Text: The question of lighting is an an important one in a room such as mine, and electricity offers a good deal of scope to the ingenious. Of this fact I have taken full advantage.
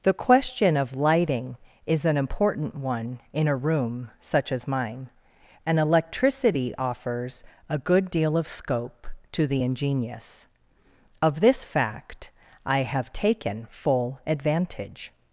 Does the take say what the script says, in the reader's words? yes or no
no